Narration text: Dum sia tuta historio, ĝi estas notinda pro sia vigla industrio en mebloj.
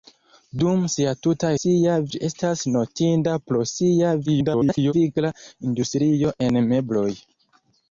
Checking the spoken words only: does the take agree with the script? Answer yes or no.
no